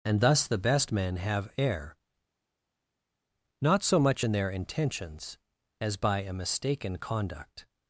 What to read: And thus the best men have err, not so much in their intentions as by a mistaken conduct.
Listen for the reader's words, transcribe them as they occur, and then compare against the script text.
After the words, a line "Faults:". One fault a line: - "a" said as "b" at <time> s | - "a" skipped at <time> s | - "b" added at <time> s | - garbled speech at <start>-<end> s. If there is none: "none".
And thus the best men have err, not so much in their intentions as by a mistaken conduct.
Faults:
none